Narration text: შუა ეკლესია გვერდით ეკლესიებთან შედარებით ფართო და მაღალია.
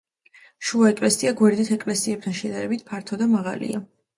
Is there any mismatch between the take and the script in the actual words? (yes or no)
no